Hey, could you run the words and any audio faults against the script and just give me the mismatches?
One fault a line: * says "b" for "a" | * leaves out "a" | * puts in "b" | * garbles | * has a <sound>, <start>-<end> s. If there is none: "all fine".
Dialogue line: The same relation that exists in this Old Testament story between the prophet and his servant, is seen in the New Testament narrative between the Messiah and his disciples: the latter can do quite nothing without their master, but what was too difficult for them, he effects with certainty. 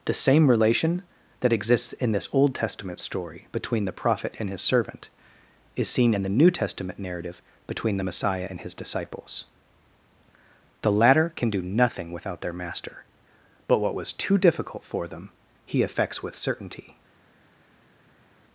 * leaves out "quite"